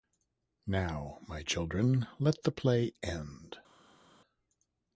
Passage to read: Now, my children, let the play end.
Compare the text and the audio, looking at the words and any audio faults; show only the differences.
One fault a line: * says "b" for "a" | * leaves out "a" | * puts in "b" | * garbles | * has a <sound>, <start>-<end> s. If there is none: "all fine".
all fine